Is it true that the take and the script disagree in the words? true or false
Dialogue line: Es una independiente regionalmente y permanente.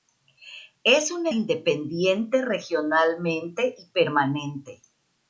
false